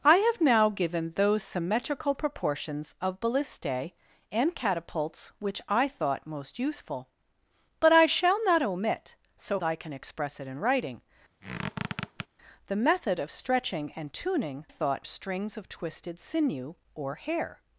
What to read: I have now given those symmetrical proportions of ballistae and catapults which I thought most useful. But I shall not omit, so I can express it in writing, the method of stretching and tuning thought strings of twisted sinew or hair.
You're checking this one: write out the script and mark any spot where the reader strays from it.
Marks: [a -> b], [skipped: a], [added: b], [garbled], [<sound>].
I have now given those symmetrical proportions of ballistae and catapults which I thought most useful. But I shall not omit, so I can express it in writing, [squeak] the method of stretching and tuning thought strings of twisted sinew or hair.